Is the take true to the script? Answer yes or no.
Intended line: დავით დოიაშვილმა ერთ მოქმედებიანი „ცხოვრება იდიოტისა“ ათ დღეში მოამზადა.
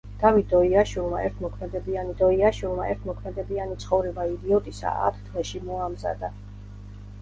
no